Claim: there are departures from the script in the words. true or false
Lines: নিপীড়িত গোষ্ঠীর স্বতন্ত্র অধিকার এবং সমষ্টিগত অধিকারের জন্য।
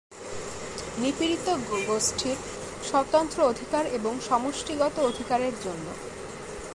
false